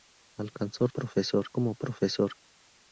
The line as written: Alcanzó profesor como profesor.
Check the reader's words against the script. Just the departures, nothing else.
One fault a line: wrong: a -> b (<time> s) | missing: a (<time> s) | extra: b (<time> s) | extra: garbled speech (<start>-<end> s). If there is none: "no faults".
no faults